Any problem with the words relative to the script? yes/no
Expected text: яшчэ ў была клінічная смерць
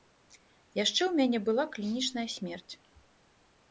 yes